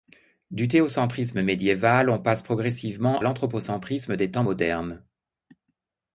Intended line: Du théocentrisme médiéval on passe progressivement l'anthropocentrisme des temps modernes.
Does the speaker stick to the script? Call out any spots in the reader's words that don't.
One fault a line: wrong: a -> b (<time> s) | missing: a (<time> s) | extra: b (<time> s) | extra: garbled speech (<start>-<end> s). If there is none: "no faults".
no faults